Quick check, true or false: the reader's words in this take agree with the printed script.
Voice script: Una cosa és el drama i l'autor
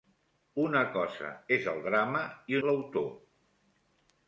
true